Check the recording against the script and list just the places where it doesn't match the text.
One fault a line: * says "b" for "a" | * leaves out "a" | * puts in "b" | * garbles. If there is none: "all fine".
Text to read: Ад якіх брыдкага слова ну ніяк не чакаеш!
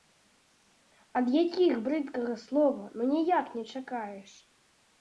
all fine